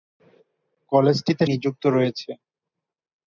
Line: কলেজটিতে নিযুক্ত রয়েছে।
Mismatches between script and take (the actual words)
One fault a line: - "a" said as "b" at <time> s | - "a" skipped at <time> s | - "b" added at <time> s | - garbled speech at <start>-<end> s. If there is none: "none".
none